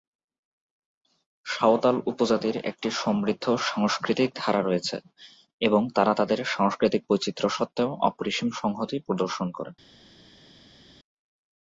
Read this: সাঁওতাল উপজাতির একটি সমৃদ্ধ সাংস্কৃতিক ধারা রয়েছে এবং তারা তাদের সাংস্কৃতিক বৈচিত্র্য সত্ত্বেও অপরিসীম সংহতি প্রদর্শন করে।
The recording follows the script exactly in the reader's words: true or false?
true